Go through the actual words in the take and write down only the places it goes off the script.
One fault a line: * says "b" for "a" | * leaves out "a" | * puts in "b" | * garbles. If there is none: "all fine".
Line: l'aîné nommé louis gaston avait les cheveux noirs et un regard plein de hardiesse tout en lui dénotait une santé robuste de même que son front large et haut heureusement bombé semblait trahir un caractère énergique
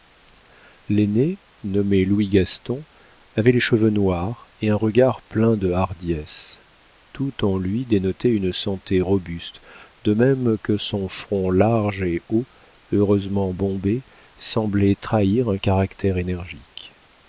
all fine